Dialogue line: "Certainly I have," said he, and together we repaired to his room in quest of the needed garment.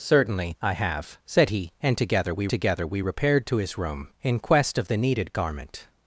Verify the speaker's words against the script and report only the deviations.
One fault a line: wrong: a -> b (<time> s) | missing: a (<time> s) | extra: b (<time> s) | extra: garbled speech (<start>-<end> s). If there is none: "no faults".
extra: together we (2.5 s)